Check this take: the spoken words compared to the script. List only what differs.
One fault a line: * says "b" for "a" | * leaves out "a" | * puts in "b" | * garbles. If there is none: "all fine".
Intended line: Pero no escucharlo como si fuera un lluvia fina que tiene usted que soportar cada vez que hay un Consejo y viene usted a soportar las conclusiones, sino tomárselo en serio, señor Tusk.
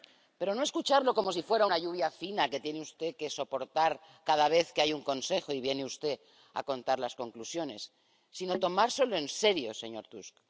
* says "una" for "un"
* says "contar" for "soportar"